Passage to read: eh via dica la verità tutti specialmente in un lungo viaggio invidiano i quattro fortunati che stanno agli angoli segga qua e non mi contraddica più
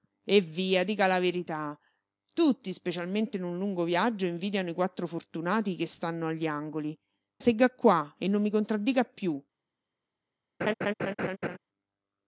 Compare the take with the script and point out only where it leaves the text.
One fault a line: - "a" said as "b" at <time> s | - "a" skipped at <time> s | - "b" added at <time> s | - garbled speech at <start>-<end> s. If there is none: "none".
none